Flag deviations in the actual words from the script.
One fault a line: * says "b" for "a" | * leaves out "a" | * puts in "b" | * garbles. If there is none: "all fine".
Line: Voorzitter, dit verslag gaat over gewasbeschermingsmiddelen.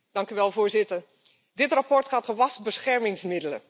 * leaves out "over"